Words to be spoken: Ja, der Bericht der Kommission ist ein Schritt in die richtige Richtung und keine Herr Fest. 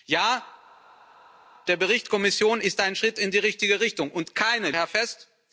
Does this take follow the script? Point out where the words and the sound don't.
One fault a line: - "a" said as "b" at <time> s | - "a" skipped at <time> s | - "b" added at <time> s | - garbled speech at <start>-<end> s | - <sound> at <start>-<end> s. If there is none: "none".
none